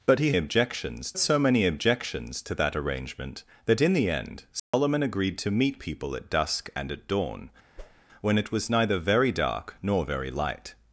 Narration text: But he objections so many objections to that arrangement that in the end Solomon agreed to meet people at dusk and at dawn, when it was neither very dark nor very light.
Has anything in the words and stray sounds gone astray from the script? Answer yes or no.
yes